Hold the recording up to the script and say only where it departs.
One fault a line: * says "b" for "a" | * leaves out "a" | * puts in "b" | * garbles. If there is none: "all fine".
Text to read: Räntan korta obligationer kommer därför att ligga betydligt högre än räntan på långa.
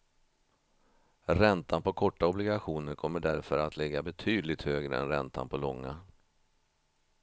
* puts in "på"